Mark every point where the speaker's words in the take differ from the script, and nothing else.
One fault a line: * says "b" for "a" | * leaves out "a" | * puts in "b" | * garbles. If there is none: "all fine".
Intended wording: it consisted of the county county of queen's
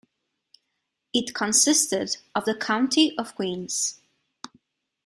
* leaves out "county"